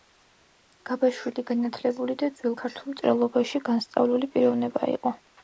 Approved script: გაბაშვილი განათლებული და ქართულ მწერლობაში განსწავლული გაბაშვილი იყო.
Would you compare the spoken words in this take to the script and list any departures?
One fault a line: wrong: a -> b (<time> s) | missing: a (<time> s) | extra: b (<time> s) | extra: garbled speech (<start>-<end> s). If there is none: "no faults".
extra: ძველ (2.4 s)
wrong: გაბაშვილი -> პიროვნება (4.4 s)